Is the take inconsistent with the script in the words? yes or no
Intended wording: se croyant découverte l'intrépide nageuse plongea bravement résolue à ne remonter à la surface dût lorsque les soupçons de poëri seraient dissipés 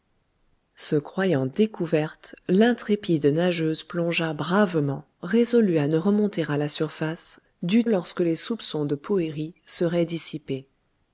no